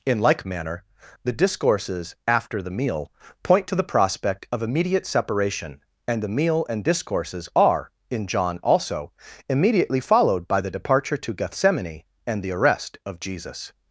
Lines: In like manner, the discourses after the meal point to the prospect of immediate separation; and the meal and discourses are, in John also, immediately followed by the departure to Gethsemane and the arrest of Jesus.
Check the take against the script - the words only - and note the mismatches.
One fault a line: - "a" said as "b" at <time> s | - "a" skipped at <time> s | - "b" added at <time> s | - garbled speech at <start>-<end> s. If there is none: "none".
none